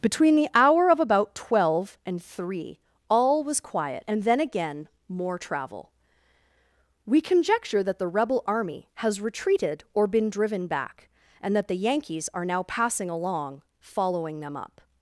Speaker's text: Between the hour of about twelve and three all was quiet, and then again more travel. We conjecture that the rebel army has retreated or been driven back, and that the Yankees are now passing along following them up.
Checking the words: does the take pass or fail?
pass